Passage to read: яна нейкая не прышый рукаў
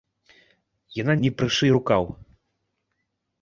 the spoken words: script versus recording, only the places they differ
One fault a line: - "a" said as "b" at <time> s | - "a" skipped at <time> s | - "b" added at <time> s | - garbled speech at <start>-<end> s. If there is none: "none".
- "нейкая" skipped at 1.1 s